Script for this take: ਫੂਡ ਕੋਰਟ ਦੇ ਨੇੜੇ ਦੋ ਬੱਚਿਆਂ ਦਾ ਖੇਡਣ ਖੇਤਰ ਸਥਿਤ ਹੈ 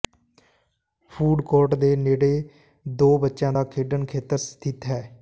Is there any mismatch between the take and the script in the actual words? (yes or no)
no